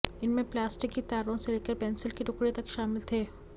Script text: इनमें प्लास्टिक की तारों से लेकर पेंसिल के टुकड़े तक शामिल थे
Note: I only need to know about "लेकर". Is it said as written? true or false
true